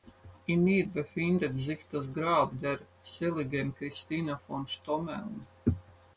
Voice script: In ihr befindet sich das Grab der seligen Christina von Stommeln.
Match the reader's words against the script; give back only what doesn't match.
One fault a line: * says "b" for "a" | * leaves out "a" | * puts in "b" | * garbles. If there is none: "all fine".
all fine